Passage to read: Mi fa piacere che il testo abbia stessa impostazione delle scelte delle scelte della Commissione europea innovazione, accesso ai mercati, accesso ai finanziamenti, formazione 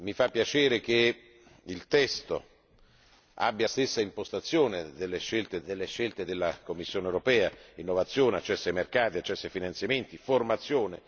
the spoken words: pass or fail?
pass